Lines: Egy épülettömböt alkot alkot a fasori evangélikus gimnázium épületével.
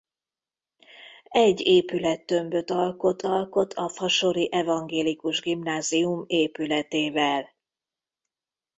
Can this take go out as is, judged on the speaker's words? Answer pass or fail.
pass